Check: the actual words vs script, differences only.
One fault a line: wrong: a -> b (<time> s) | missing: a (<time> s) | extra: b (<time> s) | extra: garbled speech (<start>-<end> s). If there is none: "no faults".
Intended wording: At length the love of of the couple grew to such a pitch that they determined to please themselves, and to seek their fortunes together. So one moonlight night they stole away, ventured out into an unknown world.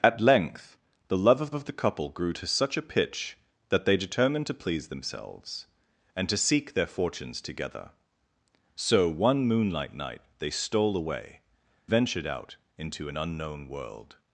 no faults